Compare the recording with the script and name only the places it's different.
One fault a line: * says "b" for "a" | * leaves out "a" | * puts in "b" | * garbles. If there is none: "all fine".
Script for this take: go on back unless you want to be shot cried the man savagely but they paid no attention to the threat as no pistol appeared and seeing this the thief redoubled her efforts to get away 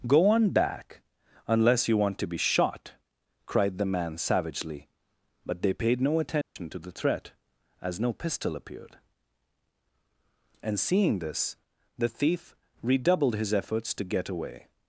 * says "his" for "her"